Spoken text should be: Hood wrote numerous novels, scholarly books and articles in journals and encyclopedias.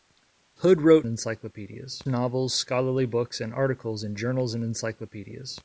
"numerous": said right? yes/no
no